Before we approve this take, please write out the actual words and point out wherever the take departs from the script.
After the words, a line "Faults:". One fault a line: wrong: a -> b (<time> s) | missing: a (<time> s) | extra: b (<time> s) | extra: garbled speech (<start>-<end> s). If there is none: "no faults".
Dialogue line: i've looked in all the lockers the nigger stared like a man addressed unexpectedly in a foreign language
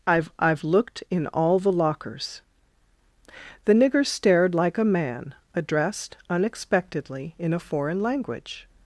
i've i've looked in all the lockers the nigger stared like a man addressed unexpectedly in a foreign language
Faults:
extra: i've (0.4 s)